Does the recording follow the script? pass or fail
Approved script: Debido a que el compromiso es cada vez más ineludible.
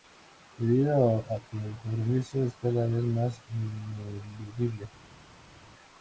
pass